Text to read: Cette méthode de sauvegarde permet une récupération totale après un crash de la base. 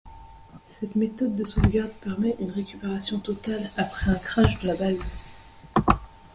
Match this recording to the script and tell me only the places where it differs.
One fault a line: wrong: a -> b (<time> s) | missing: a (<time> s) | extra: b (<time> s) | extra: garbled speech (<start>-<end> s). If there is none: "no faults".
no faults